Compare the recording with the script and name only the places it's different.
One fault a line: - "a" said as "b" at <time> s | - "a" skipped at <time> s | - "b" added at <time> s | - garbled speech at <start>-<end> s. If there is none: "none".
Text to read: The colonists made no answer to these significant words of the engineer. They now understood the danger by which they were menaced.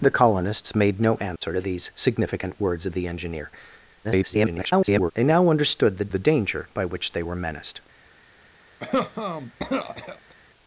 - garbled speech at 4.0-5.1 s
- "the" added at 6.1 s